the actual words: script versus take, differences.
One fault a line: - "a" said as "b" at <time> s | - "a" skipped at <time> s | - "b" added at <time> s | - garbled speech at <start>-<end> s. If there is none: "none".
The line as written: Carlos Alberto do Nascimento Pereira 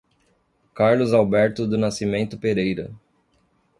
none